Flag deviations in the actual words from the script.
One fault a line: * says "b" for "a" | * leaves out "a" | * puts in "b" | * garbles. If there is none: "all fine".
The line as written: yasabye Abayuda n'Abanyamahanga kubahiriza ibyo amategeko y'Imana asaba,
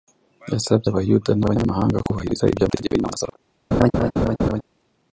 all fine